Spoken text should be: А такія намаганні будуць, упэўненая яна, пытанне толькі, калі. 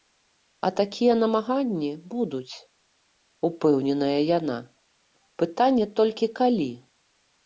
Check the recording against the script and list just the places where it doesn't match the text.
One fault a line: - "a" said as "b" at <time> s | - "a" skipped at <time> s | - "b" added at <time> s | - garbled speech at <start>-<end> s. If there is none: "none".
none